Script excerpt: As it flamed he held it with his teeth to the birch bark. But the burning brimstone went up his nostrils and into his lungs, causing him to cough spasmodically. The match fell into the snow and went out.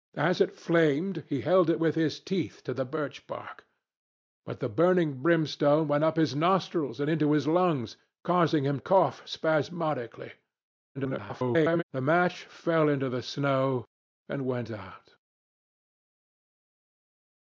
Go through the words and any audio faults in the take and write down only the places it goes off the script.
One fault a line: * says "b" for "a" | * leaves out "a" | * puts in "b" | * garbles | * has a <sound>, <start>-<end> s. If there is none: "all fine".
* leaves out "to"
* garbles